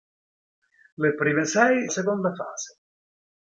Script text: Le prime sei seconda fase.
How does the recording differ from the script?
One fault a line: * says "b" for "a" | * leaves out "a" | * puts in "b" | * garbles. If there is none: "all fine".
all fine